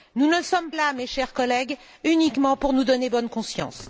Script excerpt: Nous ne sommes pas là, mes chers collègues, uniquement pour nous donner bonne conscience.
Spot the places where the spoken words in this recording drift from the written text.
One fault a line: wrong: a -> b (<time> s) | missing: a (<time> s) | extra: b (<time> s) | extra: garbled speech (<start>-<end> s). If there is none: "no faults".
missing: pas (0.7 s)